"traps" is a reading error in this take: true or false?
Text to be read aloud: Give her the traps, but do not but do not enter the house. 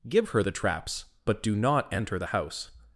false